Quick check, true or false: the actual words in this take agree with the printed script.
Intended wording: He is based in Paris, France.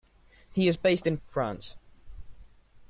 false